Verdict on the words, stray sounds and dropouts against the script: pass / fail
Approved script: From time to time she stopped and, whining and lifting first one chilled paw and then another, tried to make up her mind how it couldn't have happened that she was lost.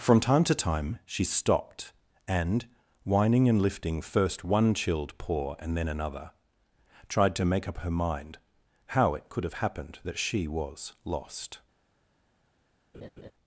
fail